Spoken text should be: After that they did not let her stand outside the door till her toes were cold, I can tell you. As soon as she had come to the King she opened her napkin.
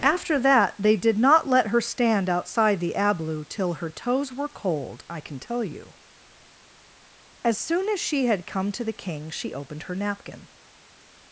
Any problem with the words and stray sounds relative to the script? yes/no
yes